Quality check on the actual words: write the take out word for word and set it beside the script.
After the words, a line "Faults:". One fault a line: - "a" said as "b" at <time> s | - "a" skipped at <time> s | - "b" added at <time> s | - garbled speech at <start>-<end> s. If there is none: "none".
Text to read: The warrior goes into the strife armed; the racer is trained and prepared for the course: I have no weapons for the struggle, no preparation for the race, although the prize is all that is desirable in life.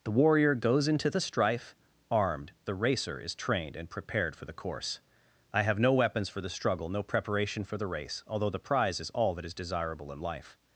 The warrior goes into the strife armed; the racer is trained and prepared for the course: I have no weapons for the struggle, no preparation for the race, although the prize is all that is desirable in life.
Faults:
none